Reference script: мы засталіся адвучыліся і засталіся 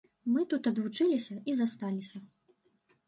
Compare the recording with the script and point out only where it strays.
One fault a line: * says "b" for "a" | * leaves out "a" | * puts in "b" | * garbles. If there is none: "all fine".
* says "тут" for "засталіся"